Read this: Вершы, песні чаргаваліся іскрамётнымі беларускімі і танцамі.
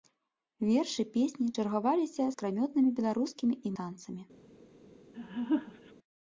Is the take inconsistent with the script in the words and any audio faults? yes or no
yes